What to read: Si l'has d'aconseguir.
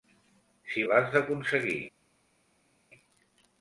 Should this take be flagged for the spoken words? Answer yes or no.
no